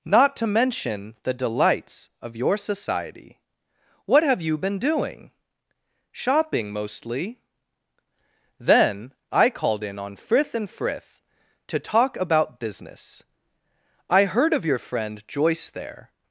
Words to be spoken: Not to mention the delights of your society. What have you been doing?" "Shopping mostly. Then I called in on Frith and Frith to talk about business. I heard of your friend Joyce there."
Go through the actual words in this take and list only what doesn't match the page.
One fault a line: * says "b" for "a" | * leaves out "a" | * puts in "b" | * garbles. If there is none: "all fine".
all fine